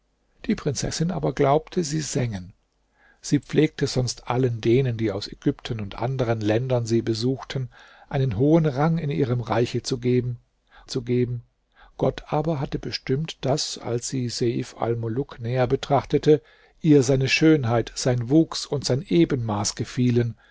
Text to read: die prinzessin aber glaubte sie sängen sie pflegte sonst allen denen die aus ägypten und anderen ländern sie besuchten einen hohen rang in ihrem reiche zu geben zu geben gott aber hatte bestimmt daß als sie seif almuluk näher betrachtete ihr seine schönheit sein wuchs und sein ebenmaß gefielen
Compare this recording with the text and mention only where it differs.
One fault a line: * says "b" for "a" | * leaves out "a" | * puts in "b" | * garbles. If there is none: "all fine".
all fine